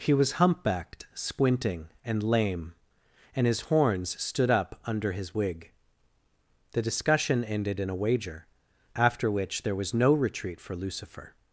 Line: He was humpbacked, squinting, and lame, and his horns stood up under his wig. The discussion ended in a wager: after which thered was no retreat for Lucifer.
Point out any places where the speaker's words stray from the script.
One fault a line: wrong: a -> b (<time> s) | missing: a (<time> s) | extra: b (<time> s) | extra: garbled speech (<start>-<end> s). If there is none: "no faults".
wrong: thered -> there (9.6 s)